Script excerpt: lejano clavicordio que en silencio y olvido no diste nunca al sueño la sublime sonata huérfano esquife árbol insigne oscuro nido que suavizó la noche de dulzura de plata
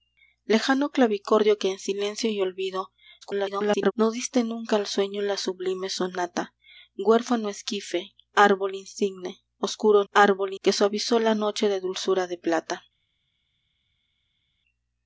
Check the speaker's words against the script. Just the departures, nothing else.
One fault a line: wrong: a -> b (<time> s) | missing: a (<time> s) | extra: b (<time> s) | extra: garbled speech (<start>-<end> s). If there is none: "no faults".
extra: garbled speech (3.2-3.9 s)
wrong: nido -> árbol (10.1 s)